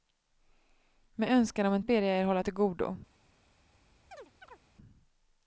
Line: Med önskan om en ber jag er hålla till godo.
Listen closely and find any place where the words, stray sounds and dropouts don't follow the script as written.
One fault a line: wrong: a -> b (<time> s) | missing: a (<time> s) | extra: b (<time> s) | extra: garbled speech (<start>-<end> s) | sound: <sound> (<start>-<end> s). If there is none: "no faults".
sound: chirp (4.1-4.6 s)